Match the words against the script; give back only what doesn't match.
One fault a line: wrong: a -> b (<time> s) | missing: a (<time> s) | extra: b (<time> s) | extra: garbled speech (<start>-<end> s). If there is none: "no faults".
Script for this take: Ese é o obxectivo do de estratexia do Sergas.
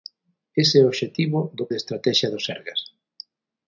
no faults